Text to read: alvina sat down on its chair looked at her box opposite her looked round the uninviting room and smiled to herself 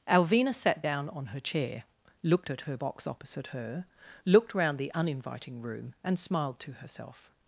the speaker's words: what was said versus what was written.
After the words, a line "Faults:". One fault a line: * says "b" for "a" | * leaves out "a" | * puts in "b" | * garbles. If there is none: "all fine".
alvina sat down on her chair looked at her box opposite her looked round the uninviting room and smiled to herself
Faults:
* says "her" for "its"